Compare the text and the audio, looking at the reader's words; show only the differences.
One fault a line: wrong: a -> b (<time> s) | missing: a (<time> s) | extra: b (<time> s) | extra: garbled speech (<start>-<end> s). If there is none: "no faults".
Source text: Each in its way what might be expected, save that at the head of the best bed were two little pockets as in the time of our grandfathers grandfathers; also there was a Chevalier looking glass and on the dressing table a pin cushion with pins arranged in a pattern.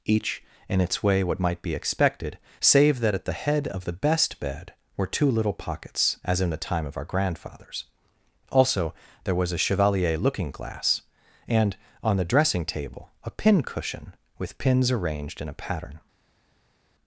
missing: grandfathers (7.9 s)